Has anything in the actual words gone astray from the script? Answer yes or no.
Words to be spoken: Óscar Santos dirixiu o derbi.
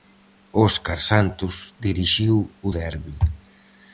no